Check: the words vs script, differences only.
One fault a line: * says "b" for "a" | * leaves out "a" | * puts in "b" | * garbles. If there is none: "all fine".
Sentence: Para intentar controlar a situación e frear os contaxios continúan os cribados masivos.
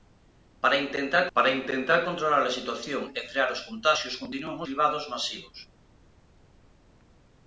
* puts in "para intentar"
* leaves out "os"